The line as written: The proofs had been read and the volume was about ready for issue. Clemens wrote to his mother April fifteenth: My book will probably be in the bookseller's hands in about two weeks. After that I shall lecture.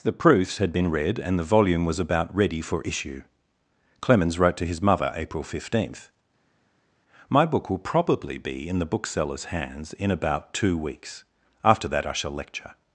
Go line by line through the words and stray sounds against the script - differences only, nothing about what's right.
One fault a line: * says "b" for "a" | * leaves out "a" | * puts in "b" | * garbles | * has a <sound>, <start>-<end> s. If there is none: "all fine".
all fine